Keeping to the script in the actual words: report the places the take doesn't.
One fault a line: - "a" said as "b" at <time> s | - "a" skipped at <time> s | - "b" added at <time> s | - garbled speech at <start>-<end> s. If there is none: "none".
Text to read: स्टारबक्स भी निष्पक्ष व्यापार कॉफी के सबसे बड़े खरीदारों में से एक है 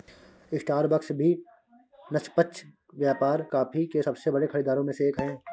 none